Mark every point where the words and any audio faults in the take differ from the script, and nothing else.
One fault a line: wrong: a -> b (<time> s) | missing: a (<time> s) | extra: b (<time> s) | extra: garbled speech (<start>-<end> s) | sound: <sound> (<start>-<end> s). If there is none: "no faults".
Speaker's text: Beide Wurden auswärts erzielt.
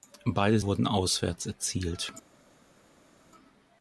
no faults